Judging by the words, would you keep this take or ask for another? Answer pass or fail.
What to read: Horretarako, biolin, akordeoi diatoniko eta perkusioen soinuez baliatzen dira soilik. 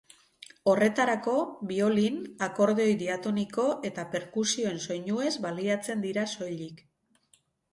pass